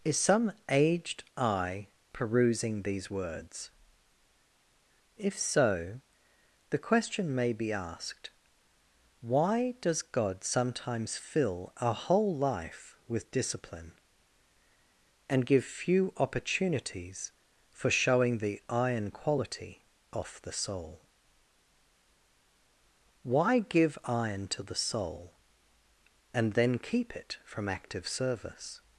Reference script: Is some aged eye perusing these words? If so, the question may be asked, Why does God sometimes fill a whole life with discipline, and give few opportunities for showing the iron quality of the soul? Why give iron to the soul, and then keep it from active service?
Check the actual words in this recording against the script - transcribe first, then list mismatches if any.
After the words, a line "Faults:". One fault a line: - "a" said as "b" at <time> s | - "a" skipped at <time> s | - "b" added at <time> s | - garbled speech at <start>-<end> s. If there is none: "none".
Is some aged eye perusing these words? If so, the question may be asked, Why does God sometimes fill a whole life with discipline, and give few opportunities for showing the iron quality off the soul? Why give iron to the soul, and then keep it from active service?
Faults:
- "of" said as "off" at 20.1 s